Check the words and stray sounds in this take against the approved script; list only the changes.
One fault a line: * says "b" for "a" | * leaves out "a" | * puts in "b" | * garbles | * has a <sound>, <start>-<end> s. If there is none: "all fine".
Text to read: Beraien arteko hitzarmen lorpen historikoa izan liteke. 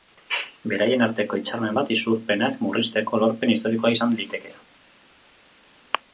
* puts in "bat isurpenak murrizteko"